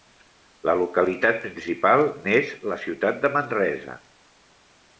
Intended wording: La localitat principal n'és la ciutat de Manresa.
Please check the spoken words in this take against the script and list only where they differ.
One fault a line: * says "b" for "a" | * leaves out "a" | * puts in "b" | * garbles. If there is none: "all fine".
all fine